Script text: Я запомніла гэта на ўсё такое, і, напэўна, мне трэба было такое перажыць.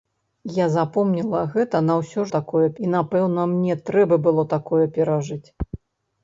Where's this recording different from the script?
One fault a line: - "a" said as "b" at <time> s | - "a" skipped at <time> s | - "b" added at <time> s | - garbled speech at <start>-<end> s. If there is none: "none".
none